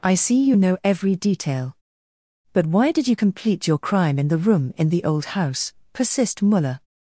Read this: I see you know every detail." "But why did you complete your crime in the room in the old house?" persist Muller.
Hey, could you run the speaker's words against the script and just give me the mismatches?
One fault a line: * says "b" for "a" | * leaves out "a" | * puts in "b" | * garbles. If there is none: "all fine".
all fine